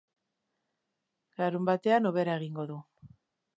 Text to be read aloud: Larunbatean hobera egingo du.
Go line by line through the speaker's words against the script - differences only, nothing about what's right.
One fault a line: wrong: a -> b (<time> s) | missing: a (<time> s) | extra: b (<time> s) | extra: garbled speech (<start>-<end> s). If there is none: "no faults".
no faults